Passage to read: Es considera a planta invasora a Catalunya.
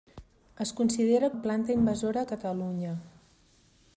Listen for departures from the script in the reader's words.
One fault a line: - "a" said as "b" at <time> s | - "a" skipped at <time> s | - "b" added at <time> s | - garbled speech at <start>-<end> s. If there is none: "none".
none